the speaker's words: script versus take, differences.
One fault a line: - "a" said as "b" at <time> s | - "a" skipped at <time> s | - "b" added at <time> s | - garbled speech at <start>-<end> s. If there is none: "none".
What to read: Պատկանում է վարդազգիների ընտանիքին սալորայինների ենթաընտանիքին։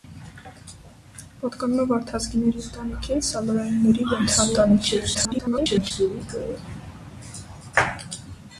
- garbled speech at 5.1-5.9 s